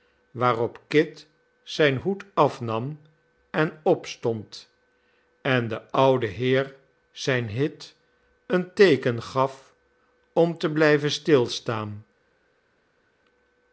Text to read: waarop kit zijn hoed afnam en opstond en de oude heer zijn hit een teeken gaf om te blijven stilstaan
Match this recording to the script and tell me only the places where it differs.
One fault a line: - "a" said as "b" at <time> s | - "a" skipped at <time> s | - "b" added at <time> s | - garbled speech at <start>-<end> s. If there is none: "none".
none